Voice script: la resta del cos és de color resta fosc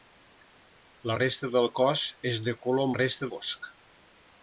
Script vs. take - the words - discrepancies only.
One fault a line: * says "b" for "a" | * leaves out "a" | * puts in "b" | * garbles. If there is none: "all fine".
all fine